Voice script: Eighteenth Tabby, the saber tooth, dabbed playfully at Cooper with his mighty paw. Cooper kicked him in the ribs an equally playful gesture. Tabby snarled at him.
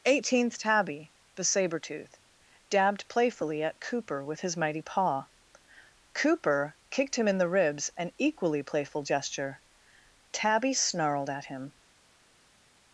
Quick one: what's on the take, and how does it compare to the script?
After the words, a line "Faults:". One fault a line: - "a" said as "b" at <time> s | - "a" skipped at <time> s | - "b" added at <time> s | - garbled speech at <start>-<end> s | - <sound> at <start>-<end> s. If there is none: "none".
Eighteenth Tabby, the saber tooth, dabbed playfully at Cooper with his mighty paw. Cooper kicked him in the ribs an equally playful gesture. Tabby snarled at him.
Faults:
none